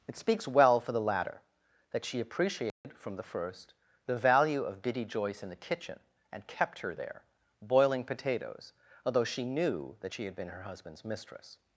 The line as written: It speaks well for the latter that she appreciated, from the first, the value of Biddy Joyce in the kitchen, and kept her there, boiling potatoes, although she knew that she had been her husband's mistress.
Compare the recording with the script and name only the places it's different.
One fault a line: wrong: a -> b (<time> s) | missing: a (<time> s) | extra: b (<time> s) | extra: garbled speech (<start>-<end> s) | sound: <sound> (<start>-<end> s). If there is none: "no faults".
sound: dropout (2.7-2.8 s)